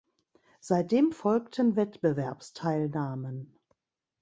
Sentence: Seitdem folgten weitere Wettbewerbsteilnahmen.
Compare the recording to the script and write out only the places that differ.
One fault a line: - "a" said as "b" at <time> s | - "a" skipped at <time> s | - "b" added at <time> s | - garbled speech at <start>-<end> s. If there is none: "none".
- "weitere" skipped at 1.8 s